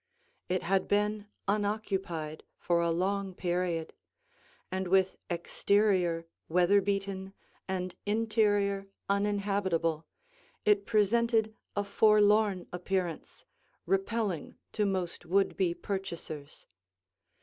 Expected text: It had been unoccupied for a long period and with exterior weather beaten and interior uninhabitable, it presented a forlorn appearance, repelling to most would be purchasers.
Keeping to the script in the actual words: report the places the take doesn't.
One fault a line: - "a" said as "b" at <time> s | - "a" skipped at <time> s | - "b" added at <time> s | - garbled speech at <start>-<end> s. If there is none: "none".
none